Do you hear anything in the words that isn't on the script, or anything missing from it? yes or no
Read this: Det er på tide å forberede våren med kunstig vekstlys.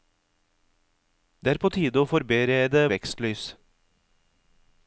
yes